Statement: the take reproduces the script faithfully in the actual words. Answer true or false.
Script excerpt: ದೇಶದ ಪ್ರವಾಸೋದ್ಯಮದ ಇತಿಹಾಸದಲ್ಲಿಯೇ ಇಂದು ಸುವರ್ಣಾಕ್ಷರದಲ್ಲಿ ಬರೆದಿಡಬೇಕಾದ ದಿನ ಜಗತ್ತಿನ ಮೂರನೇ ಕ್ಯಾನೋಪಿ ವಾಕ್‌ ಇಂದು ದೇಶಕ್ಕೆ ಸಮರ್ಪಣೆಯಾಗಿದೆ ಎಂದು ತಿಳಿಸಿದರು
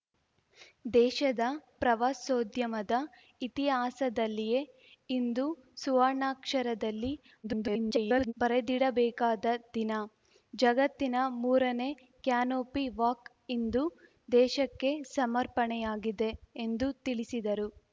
false